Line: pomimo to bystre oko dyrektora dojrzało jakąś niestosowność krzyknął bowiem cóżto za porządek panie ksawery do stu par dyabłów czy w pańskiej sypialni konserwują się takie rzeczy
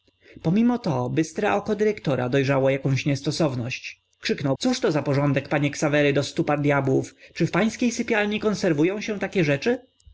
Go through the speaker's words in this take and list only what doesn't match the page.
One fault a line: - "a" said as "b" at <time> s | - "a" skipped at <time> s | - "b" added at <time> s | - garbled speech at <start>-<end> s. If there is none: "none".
- "bowiem" skipped at 4.6 s